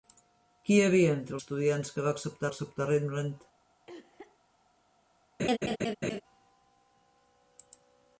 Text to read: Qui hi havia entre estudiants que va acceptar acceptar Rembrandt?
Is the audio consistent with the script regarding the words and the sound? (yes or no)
no